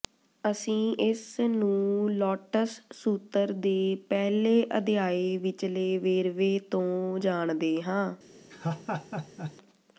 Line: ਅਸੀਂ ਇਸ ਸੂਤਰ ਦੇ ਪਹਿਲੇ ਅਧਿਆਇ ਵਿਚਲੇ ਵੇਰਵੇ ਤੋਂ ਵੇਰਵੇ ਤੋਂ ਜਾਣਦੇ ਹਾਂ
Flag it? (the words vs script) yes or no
yes